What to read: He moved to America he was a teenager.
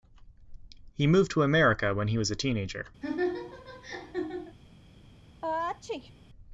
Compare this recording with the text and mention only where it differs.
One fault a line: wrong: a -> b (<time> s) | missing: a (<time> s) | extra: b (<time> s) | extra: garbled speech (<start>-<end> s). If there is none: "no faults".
extra: when (1.9 s)